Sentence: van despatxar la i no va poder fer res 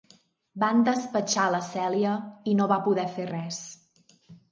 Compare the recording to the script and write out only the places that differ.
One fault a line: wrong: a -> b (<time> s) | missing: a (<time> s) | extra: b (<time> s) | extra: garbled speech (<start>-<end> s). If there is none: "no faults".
extra: cèlia (1.7 s)